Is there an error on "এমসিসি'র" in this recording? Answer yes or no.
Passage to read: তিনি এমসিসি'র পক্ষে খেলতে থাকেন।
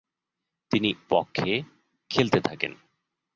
yes